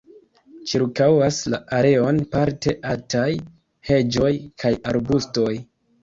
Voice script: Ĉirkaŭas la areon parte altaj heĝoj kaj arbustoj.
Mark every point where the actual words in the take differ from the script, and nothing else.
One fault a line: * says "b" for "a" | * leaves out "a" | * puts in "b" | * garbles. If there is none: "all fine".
all fine